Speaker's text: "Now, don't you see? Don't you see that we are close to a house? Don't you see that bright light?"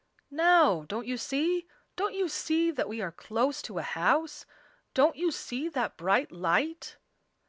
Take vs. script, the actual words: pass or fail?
pass